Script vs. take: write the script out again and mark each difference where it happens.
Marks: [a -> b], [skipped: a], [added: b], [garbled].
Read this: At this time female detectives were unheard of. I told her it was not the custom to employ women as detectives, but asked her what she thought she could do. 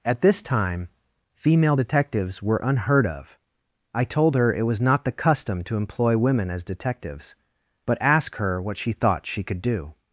At this time female detectives were unheard of. I told her it was not the custom to employ women as detectives, but [asked -> ask] her what she thought she could do.